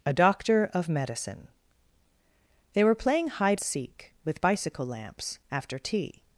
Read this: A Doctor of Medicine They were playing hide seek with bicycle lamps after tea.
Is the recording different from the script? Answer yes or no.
no